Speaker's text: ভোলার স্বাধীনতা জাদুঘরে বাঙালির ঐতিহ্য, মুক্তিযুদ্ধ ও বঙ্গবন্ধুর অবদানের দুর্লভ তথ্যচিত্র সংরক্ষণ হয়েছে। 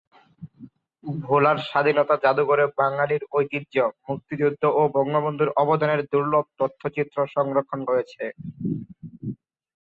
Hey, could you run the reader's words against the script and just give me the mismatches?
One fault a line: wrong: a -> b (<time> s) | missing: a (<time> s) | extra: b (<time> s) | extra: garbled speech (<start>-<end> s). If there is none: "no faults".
no faults